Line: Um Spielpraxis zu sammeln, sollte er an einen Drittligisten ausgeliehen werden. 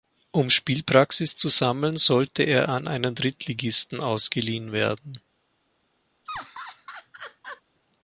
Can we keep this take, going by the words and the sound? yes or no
no